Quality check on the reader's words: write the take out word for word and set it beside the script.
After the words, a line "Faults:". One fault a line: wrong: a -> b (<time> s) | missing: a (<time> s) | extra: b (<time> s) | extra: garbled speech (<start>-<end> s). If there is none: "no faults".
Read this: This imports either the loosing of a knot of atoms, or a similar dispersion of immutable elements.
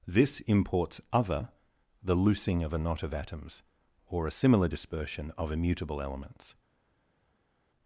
This imports other the loosing of a knot of atoms, or a similar dispersion of immutable elements.
Faults:
wrong: either -> other (1.1 s)